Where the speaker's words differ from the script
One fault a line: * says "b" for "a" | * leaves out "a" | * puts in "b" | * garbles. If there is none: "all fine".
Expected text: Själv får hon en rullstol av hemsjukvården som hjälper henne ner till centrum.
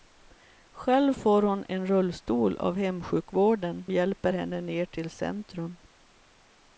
* leaves out "som"